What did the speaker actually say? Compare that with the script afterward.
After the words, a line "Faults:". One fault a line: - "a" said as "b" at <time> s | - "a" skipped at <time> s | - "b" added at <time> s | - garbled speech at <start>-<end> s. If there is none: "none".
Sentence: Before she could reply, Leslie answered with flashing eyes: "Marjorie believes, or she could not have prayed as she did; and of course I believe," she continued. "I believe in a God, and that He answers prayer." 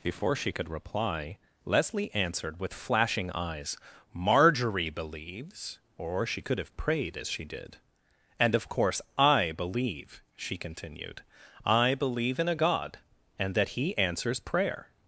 Before she could reply, Leslie answered with flashing eyes: "Marjorie believes, or she could have prayed as she did; and of course I believe," she continued. "I believe in a God, and that He answers prayer."
Faults:
- "not" skipped at 6.6 s